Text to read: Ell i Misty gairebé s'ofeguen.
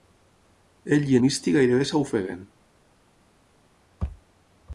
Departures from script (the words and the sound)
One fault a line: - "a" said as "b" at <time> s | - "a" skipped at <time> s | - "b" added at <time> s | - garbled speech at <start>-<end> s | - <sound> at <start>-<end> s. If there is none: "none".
none